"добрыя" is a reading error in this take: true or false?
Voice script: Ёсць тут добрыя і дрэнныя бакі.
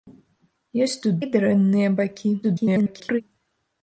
true